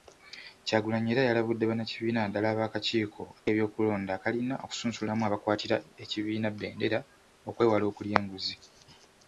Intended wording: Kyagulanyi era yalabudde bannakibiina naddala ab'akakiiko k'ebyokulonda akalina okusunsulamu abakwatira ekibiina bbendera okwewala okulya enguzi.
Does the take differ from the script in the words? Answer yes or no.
no